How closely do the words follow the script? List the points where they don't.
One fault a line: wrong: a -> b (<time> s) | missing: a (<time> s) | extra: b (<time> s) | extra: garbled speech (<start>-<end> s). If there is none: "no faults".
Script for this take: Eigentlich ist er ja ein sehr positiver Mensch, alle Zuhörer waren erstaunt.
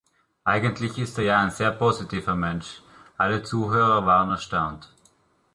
no faults